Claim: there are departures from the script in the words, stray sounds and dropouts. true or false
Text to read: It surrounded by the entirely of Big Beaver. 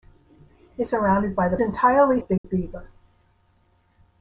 true